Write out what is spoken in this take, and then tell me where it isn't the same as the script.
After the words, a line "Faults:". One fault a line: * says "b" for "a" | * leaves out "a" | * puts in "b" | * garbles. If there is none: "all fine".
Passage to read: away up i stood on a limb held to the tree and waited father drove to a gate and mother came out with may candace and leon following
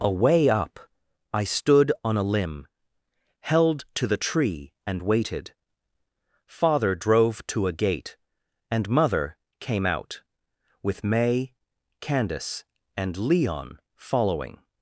away up i stood on a limb held to the tree and waited father drove to a gate and mother came out with may candace and leon following
Faults:
all fine